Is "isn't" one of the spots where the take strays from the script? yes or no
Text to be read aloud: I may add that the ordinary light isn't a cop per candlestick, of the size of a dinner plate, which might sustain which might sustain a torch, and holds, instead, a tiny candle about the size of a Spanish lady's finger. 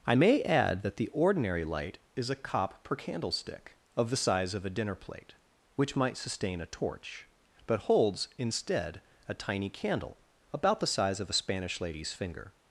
yes